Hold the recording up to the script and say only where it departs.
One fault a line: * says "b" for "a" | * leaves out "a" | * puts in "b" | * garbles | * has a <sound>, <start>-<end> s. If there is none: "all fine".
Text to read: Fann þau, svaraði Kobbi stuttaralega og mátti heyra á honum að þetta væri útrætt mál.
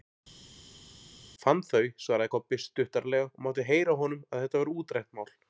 all fine